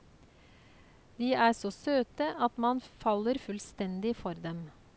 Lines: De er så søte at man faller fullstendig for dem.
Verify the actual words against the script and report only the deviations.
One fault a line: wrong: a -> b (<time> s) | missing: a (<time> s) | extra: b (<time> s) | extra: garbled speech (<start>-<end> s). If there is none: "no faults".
no faults